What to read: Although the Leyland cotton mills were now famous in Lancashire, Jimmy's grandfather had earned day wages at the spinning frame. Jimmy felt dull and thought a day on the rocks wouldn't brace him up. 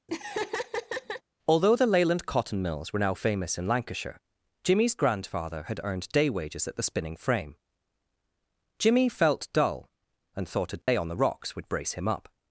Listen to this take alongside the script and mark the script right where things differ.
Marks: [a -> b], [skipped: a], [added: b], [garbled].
Although the Leyland cotton mills were now famous in Lancashire, Jimmy's grandfather had earned day wages at the spinning frame. Jimmy felt dull and thought a day on the rocks [wouldn't -> would] brace him up.